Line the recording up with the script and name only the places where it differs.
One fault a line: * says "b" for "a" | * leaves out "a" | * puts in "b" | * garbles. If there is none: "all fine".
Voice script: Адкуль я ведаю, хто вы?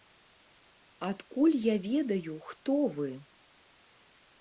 all fine